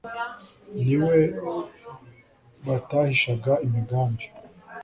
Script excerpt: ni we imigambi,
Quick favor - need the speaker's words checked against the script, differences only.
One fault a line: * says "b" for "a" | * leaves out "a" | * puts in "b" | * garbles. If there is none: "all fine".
* puts in "batahishaga"